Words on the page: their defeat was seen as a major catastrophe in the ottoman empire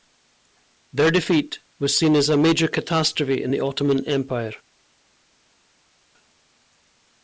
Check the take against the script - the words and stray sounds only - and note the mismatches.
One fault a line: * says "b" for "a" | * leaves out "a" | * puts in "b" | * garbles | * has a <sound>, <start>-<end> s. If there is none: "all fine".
all fine